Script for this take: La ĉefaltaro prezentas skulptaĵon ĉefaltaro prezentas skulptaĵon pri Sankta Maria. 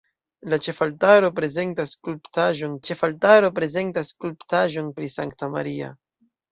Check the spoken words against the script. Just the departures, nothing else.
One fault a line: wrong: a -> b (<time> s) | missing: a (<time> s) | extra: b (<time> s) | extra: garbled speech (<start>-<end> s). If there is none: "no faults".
no faults